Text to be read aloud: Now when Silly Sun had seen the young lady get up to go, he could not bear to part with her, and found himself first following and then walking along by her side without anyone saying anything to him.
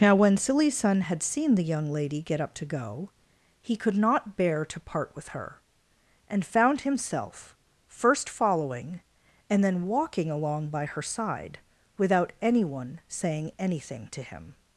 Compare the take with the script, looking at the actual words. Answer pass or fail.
pass